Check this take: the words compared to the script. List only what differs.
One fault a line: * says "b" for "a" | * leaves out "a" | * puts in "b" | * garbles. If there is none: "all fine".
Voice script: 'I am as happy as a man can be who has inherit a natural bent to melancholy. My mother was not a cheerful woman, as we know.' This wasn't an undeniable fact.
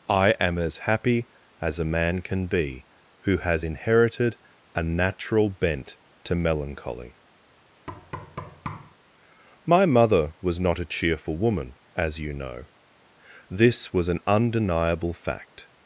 * says "inherited" for "inherit"
* says "you" for "we"
* says "was" for "wasn't"